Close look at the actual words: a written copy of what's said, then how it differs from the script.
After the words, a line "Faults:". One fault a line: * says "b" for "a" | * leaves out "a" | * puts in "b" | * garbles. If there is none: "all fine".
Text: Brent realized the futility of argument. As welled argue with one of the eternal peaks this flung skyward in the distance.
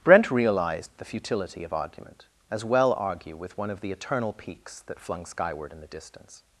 Brent realized the futility of argument. As well argue with one of the eternal peaks that flung skyward in the distance.
Faults:
* says "well" for "welled"
* says "that" for "this"